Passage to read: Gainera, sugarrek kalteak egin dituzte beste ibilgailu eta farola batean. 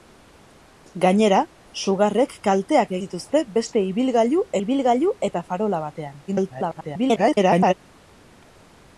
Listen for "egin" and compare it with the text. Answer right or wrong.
wrong